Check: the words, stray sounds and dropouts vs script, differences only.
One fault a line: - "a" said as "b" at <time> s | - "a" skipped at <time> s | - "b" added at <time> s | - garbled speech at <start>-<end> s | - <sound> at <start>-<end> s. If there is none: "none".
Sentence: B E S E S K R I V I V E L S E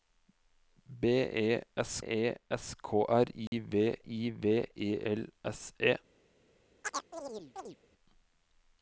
- dropout at 3.5-3.5 s
- chirp at 6.8-7.8 s